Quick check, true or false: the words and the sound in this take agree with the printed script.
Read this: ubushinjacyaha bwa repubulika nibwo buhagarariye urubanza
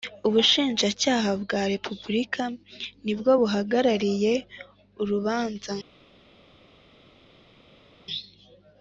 true